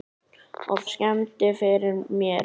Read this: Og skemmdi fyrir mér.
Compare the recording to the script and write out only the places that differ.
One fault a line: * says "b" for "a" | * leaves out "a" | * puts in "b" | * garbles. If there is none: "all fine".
all fine